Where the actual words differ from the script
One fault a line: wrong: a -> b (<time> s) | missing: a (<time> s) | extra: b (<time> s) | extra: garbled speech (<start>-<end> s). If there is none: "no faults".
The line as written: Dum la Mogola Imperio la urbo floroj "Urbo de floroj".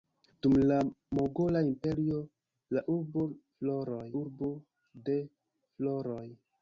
no faults